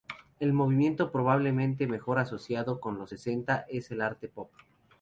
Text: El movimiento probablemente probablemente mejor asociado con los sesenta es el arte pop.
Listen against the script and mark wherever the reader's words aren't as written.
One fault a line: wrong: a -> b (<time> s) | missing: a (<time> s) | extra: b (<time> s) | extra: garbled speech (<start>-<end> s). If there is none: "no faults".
missing: probablemente (1.9 s)